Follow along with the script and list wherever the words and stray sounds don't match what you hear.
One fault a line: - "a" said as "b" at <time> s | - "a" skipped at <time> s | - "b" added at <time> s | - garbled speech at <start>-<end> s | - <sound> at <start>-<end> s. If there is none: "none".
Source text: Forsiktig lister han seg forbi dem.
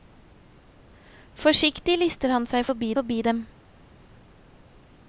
- "forbi" added at 3.0 s